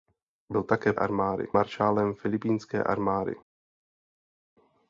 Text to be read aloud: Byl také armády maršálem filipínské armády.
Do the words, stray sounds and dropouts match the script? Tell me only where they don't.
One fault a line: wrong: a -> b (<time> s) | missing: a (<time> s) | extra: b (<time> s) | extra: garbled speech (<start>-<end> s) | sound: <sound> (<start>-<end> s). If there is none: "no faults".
no faults